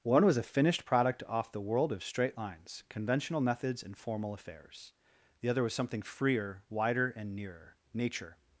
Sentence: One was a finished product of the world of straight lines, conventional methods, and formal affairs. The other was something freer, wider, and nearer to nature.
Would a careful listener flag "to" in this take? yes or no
yes